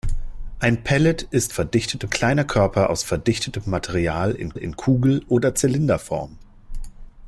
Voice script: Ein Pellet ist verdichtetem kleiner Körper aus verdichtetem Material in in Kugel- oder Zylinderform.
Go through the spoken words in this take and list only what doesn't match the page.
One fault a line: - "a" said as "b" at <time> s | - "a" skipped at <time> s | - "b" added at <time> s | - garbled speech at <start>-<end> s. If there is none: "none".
none